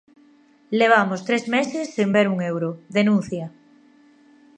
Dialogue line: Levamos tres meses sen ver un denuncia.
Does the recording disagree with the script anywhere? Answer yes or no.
yes